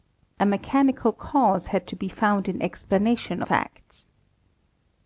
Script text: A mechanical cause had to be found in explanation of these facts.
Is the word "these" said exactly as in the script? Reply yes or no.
no